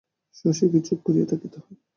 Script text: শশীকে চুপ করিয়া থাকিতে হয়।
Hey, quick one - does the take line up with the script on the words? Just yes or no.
yes